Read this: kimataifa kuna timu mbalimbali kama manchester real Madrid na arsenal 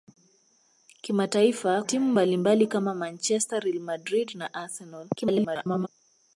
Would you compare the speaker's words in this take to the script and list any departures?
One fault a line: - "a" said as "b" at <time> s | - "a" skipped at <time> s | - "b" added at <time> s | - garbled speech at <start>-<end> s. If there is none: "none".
- "kuna" skipped at 1.8 s
- garbled speech at 5.1-5.9 s